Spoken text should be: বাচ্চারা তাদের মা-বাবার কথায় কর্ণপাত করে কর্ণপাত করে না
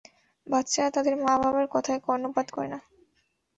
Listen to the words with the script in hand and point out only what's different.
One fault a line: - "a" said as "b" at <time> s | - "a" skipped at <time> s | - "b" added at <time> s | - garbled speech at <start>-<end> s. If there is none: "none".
- "কর্ণপাত করে" skipped at 2.7 s